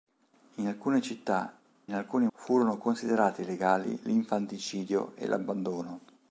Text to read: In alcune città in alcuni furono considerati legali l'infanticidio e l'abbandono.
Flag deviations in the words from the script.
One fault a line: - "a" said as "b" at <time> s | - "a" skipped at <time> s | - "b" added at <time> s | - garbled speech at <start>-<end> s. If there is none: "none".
none